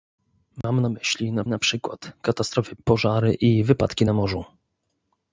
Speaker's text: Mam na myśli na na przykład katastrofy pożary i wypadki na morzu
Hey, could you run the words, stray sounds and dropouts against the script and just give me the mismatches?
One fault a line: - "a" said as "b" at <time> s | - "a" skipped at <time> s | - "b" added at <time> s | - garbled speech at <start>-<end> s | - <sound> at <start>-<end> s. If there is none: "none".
- dropout at 0.6-0.6 s